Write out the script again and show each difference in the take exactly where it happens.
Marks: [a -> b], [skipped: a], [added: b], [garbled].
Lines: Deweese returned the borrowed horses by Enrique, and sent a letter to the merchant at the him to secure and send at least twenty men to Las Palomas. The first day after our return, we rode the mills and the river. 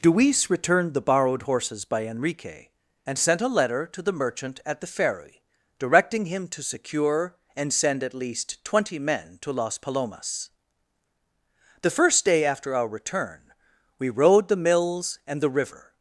Deweese returned the borrowed horses by Enrique, and sent a letter to the merchant at the [added: ferry directing] him to secure and send at least twenty men to Las Palomas. The first day after our return, we rode the mills and the river.